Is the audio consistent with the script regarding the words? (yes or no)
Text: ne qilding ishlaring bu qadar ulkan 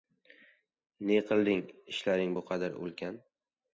yes